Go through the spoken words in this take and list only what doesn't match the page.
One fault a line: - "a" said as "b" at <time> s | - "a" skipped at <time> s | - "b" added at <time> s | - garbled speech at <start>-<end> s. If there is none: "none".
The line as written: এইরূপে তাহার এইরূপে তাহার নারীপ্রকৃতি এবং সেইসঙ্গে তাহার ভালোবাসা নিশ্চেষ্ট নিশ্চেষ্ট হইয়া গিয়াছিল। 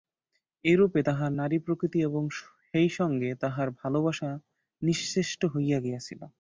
- "এইরূপে তাহার" skipped at 1.3 s
- "নিশ্চেষ্ট" skipped at 5.4 s